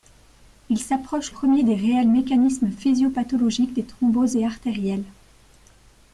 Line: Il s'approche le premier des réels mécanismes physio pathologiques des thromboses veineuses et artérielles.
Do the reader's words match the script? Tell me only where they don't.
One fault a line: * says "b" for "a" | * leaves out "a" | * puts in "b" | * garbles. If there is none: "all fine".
* leaves out "le"
* leaves out "veineuses"